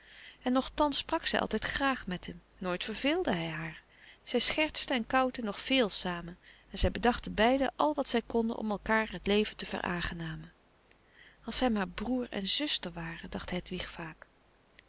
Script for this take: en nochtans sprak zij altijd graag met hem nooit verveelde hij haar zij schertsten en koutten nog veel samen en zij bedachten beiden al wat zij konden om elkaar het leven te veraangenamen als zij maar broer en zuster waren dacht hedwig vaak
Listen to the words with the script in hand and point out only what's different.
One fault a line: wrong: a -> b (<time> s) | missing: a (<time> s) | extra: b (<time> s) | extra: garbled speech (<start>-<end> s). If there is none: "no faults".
no faults